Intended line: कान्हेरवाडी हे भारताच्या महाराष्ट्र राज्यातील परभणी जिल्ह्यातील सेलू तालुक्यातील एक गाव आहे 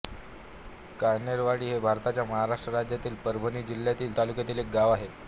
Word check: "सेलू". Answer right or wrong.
wrong